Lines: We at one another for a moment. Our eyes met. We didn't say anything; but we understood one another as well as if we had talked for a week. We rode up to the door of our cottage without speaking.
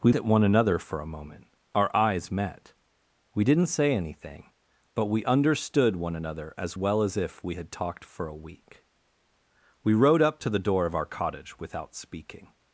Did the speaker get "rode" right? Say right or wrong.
right